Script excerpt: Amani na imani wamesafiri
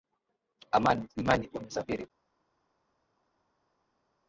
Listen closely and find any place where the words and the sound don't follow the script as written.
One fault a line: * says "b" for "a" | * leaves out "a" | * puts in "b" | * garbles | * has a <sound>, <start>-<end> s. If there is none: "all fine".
* leaves out "na"